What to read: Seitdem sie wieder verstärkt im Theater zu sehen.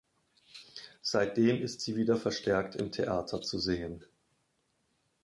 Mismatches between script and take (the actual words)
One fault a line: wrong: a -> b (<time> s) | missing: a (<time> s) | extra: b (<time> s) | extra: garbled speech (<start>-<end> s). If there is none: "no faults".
extra: ist (1.6 s)